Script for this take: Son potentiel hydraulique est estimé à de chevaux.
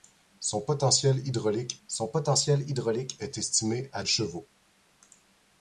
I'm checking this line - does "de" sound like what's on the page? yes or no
no